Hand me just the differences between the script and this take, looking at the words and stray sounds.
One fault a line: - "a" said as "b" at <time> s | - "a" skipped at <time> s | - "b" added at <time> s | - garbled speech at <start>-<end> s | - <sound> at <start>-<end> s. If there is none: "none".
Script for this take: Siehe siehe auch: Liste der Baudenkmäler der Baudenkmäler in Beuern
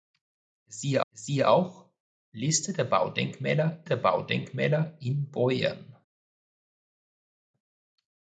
none